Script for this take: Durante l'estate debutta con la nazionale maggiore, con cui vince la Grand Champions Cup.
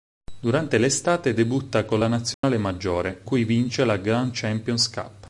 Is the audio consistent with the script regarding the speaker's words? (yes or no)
no